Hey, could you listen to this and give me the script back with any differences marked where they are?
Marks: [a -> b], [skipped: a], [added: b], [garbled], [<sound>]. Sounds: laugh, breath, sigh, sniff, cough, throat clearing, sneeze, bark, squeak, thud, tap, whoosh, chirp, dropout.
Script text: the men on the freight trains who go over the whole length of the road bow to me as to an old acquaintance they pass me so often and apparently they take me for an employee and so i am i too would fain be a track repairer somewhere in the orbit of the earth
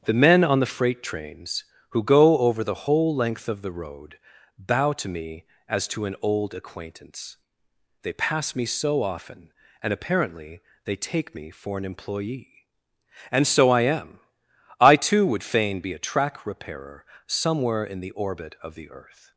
the men on the freight trains who go over the whole length of the road bow to me as to an old acquaintance they pass me so often and apparently they take me for an employee and so i am i too would fain be a track repairer somewhere in the orbit of the earth